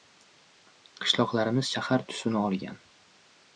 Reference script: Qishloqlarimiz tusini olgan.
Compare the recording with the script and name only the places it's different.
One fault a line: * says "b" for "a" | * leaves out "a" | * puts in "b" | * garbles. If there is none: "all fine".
* puts in "shahar"